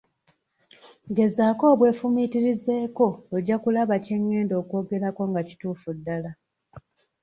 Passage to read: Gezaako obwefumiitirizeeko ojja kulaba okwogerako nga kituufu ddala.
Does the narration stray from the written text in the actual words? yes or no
yes